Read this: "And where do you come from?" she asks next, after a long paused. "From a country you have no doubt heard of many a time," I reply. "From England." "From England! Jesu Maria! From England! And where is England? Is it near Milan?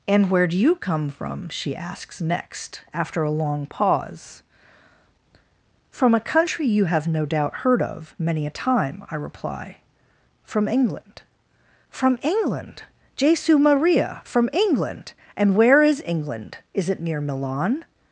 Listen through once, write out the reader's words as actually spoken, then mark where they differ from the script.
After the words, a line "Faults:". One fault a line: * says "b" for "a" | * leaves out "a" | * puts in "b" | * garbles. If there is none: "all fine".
"And where do you come from?" she asks next, after a long pause. "From a country you have no doubt heard of many a time," I reply. "From England." "From England! Jesu Maria! From England! And where is England? Is it near Milan?
Faults:
* says "pause" for "paused"